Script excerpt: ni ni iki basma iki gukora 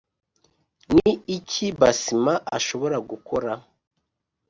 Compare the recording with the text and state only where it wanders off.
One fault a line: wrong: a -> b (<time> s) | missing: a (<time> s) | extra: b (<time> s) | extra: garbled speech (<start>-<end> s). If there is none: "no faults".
missing: ni (1.1 s)
wrong: iki -> ashobora (2.6 s)